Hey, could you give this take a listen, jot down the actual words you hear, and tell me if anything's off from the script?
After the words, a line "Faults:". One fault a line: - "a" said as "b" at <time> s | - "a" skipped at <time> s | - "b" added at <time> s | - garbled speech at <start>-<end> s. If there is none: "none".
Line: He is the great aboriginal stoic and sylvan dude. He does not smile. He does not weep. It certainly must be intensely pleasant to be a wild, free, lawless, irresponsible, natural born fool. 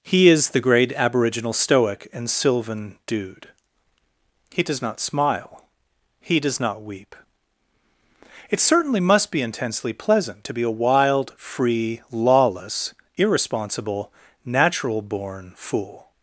He is the great aboriginal stoic and sylvan dude. He does not smile. He does not weep. It certainly must be intensely pleasant to be a wild, free, lawless, irresponsible, natural born fool.
Faults:
none